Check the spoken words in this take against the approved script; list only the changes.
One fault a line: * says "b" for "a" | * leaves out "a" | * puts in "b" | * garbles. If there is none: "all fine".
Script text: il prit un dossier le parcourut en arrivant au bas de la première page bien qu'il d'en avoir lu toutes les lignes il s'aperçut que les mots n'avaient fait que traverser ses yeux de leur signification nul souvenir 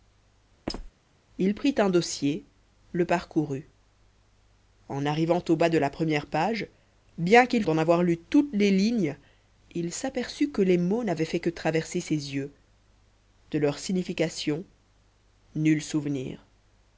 all fine